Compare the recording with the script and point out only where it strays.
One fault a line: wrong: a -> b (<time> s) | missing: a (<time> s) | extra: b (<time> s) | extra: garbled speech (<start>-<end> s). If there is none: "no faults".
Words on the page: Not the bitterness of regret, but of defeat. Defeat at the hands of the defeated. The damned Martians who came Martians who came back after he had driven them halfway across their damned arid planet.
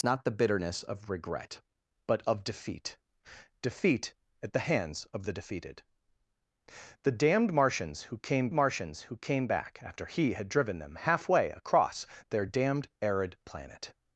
no faults